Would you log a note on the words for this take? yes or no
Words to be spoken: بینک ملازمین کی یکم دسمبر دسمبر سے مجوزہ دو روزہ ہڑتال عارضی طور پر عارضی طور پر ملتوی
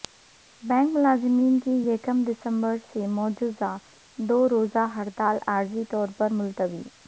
yes